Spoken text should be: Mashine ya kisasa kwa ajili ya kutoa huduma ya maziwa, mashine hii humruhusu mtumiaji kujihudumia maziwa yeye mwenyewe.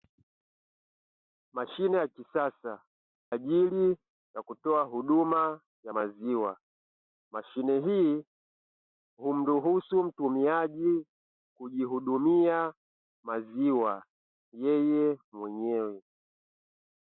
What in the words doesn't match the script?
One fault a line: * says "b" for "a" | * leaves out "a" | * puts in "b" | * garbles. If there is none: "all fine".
* leaves out "kwa"